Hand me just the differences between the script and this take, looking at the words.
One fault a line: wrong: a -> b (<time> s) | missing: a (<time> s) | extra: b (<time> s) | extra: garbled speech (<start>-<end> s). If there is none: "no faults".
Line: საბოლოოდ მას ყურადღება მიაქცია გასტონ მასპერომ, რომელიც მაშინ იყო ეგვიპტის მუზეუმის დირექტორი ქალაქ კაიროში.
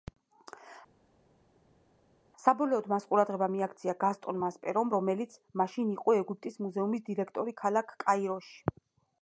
no faults